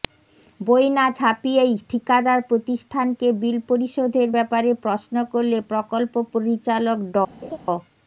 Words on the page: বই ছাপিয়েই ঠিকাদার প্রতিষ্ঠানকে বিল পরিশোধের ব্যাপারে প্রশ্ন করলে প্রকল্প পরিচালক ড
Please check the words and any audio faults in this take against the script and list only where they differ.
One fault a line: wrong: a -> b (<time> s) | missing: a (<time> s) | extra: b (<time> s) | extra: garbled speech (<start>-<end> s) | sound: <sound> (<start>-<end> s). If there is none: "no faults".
extra: না (0.9 s)
sound: laugh (7.4-7.6 s)